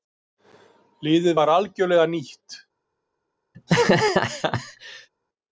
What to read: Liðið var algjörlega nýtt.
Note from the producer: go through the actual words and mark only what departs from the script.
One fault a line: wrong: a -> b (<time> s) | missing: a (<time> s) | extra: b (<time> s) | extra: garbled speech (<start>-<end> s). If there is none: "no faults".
no faults